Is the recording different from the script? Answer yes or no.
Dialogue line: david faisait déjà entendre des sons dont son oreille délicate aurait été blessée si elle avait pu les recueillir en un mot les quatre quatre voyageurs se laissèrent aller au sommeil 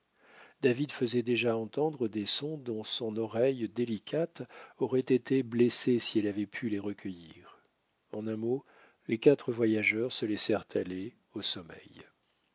yes